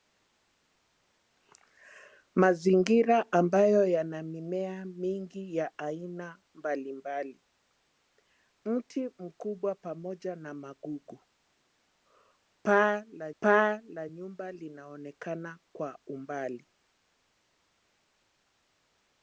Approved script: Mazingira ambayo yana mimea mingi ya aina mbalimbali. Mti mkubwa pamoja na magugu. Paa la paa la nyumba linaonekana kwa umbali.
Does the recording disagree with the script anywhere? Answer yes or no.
no